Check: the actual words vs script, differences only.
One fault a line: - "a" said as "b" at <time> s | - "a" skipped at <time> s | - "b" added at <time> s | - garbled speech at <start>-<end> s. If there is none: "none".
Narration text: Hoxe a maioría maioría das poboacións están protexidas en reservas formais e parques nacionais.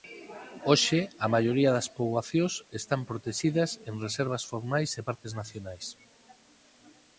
- "maioría" skipped at 1.7 s